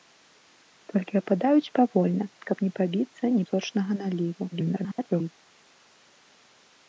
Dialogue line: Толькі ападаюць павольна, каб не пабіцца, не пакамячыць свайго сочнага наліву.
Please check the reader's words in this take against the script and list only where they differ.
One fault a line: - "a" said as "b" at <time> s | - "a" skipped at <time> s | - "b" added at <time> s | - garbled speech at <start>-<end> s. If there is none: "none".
- "пакамячыць свайго" skipped at 3.5 s
- garbled speech at 4.5-5.3 s